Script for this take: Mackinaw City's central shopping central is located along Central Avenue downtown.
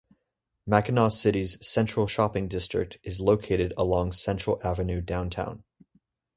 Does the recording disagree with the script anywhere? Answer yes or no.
yes